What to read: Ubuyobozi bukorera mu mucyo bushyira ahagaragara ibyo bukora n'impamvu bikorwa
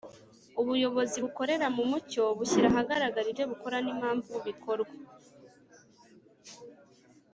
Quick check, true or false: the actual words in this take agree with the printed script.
true